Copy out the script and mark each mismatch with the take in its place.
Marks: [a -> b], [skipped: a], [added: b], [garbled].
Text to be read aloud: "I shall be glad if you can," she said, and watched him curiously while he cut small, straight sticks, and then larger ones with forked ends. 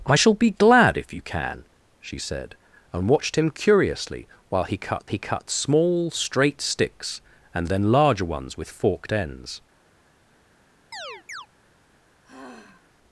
"I shall be glad if you can," she said, and watched him curiously while he cut [added: he cut] small, straight sticks, and then larger ones with forked ends.